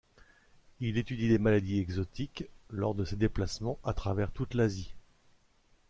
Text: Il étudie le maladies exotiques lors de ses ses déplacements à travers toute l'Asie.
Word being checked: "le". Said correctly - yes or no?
no